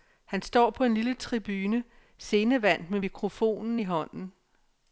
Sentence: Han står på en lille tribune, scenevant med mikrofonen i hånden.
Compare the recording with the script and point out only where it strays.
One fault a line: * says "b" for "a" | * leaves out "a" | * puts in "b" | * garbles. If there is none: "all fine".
all fine